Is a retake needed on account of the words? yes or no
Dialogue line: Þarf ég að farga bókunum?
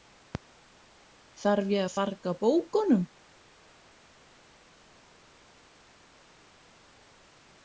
no